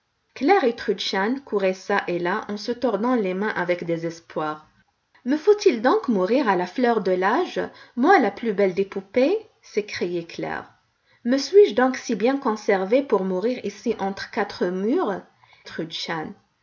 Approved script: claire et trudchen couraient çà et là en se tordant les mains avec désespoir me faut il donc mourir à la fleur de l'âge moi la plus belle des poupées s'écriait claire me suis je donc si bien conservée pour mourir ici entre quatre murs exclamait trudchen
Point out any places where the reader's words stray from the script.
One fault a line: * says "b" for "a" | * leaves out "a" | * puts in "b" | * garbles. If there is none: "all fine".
* leaves out "exclamait"